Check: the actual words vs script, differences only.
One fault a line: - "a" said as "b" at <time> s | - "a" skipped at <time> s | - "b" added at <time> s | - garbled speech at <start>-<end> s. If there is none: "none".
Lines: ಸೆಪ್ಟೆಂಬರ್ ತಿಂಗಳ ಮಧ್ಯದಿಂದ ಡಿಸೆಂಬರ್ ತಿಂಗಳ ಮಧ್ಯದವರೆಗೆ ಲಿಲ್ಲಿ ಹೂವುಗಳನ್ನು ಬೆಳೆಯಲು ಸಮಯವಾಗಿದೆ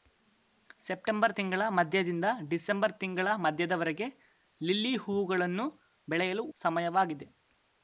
none